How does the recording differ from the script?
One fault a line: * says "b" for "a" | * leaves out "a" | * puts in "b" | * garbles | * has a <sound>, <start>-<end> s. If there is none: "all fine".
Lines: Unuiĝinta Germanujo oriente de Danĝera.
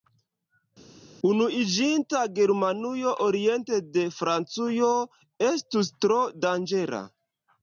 * puts in "Francujo estus tro"